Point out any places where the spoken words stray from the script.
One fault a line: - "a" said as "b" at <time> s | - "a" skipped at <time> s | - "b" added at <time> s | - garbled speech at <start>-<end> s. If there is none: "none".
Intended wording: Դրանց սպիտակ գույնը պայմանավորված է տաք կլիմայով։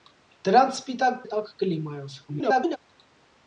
- "գույնը պայմանավորված" skipped at 1.2 s
- garbled speech at 2.3-2.8 s